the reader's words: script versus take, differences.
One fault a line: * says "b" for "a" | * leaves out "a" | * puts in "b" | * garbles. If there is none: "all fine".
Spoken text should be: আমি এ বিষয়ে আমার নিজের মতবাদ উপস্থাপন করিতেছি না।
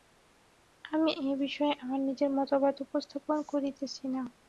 all fine